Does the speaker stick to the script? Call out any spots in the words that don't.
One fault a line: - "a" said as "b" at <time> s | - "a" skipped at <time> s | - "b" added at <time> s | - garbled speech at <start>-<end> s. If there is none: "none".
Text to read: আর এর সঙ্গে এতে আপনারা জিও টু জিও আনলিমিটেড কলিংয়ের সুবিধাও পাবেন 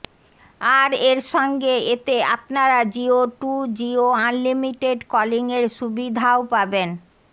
none